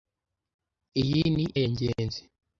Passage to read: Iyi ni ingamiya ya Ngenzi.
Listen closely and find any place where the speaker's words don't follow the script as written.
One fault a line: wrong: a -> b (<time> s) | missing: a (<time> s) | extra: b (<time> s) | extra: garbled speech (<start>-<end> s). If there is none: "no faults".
missing: ingamiya (1.4 s)